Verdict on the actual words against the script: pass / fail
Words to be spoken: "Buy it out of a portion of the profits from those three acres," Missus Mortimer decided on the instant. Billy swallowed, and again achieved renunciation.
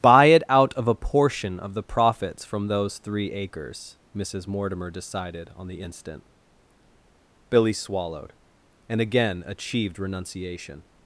pass